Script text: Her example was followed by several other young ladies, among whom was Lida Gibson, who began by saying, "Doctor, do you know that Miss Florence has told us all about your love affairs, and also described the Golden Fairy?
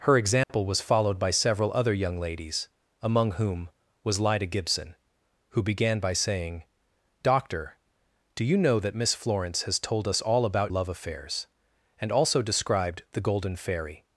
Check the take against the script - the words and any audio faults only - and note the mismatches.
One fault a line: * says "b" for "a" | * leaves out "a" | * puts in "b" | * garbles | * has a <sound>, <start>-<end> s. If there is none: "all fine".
* has a dropout, 0.4-0.5 s
* leaves out "your"